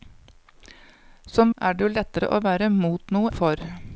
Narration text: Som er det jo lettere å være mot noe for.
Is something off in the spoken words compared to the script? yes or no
no